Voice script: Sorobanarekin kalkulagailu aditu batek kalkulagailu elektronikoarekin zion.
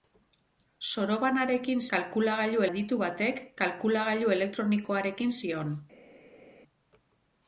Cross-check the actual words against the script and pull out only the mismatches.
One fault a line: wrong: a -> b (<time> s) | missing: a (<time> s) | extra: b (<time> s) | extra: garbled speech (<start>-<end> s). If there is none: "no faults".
no faults